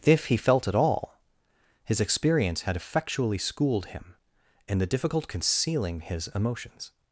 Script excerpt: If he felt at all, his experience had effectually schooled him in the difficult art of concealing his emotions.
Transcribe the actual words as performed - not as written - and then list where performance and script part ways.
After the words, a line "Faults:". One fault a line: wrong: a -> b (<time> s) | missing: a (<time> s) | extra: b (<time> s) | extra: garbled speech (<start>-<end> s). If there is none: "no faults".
If he felt at all, his experience had effectually schooled him in the difficult concealing his emotions.
Faults:
missing: art of (5.3 s)